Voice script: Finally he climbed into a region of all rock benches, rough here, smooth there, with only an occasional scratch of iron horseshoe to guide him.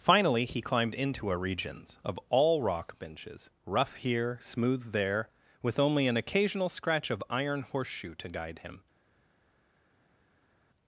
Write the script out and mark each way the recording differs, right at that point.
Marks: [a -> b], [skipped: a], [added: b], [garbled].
Finally he climbed into a [region -> regions] of all rock benches, rough here, smooth there, with only an occasional scratch of iron horseshoe to guide him.